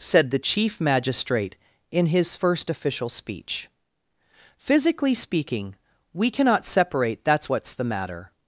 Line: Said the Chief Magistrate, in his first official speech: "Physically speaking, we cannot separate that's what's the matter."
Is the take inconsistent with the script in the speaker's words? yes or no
no